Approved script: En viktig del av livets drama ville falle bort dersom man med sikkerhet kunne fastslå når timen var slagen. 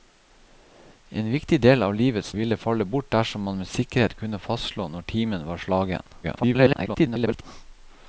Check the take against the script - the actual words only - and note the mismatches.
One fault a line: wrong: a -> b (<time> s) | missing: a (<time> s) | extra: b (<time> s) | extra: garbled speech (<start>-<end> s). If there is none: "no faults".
missing: drama (2.3 s)
extra: garbled speech (6.2-7.4 s)